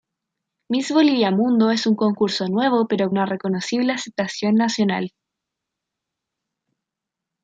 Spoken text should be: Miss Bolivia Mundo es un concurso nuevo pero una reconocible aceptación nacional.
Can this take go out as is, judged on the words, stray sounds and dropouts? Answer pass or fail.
pass